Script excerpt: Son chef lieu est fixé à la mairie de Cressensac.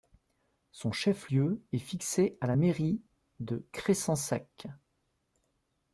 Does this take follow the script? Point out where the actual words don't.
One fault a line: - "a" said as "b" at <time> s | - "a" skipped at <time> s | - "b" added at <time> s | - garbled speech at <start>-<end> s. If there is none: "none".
none